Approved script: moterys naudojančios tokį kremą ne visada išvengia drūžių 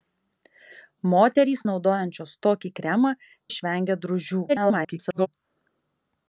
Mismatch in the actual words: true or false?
true